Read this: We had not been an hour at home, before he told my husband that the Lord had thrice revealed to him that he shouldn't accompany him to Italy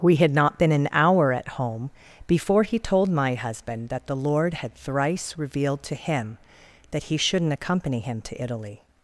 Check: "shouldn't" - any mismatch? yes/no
no